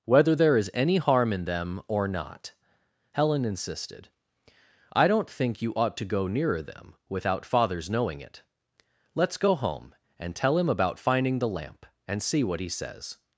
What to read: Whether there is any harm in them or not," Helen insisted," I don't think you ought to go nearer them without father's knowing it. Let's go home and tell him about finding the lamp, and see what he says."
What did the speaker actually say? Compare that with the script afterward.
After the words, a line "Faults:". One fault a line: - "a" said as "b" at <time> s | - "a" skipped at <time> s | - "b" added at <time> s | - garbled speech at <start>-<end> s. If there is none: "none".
Whether there is any harm in them or not," Helen insisted," I don't think you ought to go nearer them without father's knowing it. Let's go home and tell him about finding the lamp, and see what he says."
Faults:
none